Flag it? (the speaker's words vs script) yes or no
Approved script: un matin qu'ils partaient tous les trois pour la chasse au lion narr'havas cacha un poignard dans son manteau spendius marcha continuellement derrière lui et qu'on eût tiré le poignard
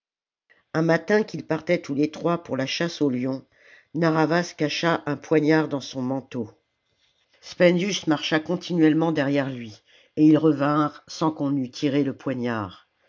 yes